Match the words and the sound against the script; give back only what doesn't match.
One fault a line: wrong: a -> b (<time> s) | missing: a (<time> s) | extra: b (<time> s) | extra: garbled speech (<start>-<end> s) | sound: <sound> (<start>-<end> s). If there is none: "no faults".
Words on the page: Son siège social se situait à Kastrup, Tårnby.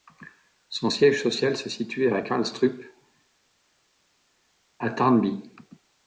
extra: à (4.8 s)